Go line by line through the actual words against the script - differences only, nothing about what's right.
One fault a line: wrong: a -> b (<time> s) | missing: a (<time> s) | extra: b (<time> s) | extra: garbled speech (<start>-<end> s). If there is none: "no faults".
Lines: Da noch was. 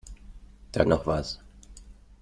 no faults